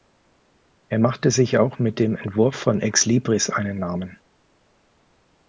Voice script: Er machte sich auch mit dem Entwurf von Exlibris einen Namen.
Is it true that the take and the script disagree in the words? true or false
false